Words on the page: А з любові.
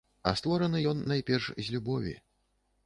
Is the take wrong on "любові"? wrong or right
right